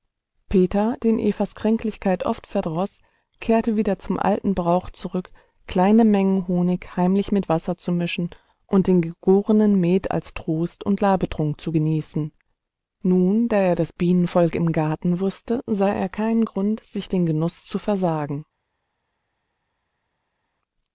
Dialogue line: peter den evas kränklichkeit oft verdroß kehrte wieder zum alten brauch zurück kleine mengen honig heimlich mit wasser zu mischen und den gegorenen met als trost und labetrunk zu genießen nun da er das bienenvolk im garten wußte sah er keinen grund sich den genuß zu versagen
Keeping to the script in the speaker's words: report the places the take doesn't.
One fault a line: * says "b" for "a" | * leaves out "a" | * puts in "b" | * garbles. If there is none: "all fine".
all fine